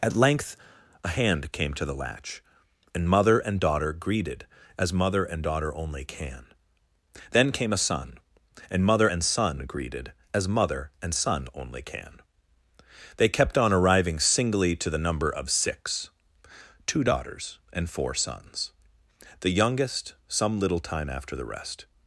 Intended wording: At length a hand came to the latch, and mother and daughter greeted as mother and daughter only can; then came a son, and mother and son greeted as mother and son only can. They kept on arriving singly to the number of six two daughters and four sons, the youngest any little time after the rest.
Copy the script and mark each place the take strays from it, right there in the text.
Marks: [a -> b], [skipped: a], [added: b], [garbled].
At length a hand came to the latch, and mother and daughter greeted as mother and daughter only can; then came a son, and mother and son greeted as mother and son only can. They kept on arriving singly to the number of six two daughters and four sons, the youngest [any -> some] little time after the rest.